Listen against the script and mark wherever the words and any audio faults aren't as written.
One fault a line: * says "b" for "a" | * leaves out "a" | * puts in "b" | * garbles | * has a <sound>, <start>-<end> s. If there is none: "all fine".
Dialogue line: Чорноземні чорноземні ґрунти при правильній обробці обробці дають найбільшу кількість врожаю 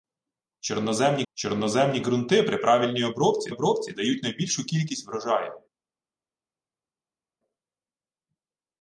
all fine